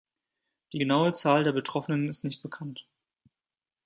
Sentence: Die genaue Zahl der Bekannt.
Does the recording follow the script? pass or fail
fail